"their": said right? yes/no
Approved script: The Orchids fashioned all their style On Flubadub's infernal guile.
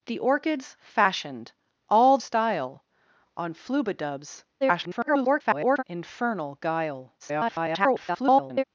no